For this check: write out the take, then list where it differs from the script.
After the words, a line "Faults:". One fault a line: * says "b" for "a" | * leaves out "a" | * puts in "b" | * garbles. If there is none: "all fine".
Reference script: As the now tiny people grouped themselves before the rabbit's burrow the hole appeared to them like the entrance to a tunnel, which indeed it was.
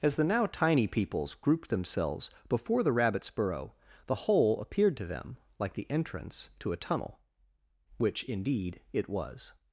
As the now tiny peoples grouped themselves before the rabbit's burrow the hole appeared to them like the entrance to a tunnel, which indeed it was.
Faults:
* says "peoples" for "people"